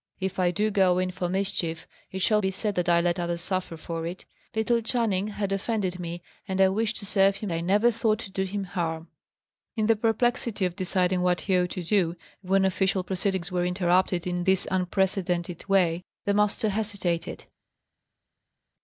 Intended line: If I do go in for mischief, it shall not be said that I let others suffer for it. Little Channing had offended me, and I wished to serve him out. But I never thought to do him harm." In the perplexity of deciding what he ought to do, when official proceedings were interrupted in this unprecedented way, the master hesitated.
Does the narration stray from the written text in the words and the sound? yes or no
yes